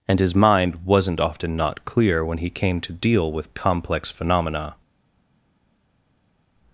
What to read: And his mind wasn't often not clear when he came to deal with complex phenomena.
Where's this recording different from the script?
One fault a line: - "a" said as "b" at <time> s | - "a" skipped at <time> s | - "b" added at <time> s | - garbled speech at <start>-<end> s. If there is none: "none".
none